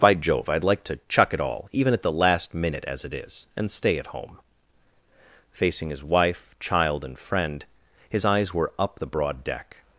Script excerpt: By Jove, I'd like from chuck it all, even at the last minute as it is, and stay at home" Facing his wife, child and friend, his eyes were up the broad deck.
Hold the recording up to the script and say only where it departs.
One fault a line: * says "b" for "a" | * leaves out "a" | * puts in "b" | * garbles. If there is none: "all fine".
* says "to" for "from"